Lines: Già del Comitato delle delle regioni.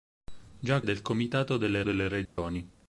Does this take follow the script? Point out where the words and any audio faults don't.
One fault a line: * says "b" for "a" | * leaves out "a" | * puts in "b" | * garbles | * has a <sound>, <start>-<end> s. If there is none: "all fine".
* has a dropout, 2.3-2.4 s